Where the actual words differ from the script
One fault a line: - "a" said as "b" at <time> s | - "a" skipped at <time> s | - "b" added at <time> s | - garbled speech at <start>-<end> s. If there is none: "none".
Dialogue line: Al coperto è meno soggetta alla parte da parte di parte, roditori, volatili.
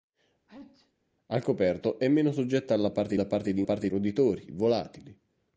none